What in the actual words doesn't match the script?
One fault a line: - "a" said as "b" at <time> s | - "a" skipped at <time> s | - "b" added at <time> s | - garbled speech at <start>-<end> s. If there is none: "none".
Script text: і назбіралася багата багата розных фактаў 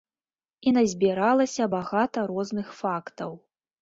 - "багата" skipped at 2.2 s